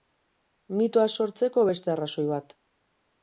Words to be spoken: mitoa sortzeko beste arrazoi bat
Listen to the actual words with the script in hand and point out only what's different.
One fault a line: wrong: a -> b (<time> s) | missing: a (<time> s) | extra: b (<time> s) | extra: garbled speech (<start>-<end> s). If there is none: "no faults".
no faults